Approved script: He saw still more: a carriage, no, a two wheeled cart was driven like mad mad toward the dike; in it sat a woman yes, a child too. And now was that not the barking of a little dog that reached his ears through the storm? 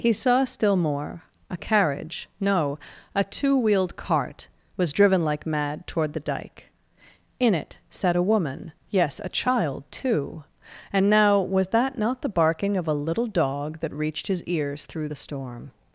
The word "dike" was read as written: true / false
true